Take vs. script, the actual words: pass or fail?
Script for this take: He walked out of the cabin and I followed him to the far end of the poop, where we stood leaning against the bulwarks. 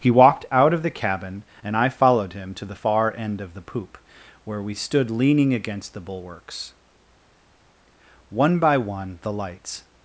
fail